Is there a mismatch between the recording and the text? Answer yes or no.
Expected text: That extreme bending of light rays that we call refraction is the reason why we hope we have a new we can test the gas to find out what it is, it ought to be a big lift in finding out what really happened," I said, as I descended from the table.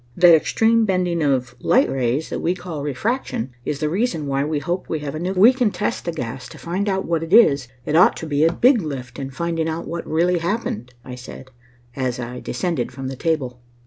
no